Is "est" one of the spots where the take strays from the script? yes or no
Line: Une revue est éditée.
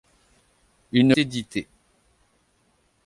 yes